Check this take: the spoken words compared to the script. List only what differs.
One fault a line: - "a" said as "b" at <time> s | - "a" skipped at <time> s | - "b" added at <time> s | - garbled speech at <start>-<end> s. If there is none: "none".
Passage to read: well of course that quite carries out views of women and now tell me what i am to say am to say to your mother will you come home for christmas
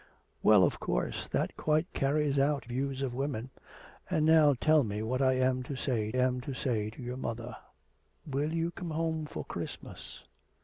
none